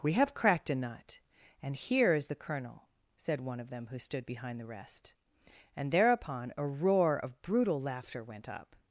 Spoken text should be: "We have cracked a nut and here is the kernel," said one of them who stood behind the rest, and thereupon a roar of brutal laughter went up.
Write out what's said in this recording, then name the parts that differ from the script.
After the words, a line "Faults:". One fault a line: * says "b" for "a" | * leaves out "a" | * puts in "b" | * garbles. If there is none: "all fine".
"We have cracked a nut and here is the kernel," said one of them who stood behind the rest, and thereupon a roar of brutal laughter went up.
Faults:
all fine